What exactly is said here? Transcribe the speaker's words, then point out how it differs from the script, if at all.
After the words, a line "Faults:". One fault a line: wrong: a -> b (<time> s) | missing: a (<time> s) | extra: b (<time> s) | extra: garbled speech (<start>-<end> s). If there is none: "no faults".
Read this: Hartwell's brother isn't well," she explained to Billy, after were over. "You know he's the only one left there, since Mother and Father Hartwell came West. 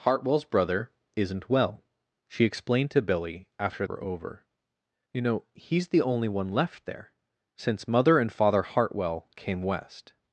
Hartwell's brother isn't well," she explained to Billy, after were over. "You know he's the only one left there, since Mother and Father Hartwell came West.
Faults:
no faults